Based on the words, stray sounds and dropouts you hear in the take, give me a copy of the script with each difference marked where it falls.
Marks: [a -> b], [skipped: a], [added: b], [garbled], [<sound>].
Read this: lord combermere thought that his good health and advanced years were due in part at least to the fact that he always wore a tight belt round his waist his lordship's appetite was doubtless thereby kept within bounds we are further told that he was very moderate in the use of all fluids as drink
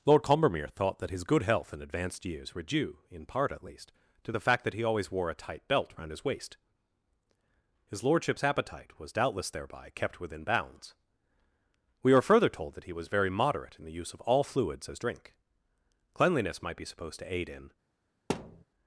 lord combermere thought that his good health and advanced years were due in part at least to the fact that he always wore a tight belt round his waist his lordship's appetite was doubtless thereby kept within bounds we are further told that he was very moderate in the use of all fluids as drink [added: cleanliness might be supposed to aid in] [thud]